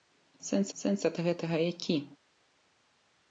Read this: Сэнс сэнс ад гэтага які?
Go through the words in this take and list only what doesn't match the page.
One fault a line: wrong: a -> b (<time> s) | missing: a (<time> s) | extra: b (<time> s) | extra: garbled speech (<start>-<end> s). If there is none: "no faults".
no faults